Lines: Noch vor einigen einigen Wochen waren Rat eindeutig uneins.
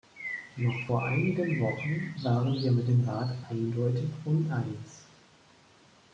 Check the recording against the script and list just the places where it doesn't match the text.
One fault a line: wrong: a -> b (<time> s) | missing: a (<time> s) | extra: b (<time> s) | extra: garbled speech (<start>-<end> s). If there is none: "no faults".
missing: einigen (1.6 s)
extra: wir mit dem (2.5 s)